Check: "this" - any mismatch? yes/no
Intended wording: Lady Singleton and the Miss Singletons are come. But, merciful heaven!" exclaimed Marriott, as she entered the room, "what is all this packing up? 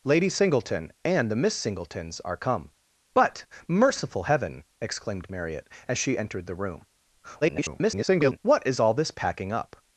no